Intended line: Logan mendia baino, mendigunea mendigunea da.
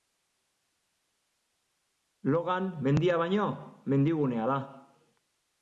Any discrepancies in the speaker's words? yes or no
yes